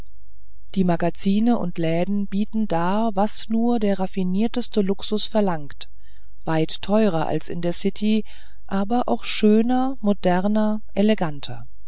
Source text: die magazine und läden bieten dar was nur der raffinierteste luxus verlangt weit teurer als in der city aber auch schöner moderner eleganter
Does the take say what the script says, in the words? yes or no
yes